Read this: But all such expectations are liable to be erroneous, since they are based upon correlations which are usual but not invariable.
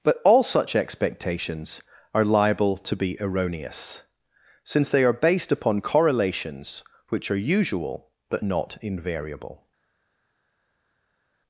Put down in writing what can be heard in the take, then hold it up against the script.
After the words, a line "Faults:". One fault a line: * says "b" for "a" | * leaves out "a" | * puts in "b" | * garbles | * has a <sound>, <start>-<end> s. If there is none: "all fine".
But all such expectations are liable to be erroneous, since they are based upon correlations which are usual but not invariable.
Faults:
all fine